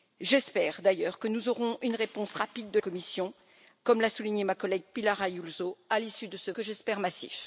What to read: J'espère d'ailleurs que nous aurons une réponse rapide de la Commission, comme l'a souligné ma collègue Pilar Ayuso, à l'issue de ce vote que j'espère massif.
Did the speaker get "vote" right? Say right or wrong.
wrong